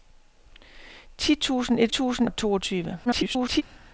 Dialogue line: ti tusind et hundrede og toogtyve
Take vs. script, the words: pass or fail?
fail